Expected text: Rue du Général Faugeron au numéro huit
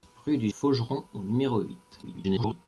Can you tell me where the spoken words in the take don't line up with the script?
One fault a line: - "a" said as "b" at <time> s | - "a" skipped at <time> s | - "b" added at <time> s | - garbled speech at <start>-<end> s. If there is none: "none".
- "Général" skipped at 0.5 s
- garbled speech at 2.0-2.7 s